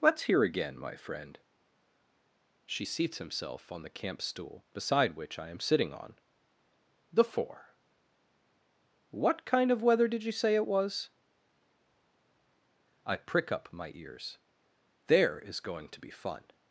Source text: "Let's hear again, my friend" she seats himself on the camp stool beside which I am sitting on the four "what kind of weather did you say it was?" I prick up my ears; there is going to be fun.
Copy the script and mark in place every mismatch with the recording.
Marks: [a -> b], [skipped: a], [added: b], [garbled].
"Let's hear again, my friend" she seats himself on the camp stool beside which I am sitting on the four "what kind of weather did you say it was?" I prick up my ears; there is going to be fun.